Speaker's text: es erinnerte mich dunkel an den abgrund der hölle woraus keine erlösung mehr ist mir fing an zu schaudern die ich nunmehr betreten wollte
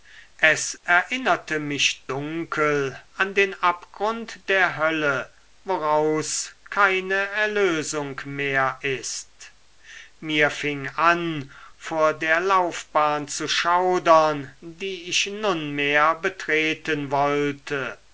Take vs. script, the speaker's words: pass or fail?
fail